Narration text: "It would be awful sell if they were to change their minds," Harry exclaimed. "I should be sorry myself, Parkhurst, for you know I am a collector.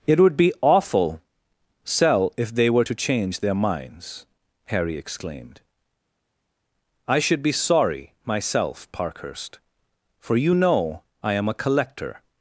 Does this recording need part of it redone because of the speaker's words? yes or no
no